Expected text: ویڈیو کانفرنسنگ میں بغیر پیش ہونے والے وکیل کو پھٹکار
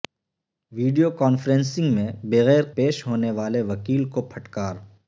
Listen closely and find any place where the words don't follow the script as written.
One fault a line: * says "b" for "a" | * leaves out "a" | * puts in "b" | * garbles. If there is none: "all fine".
all fine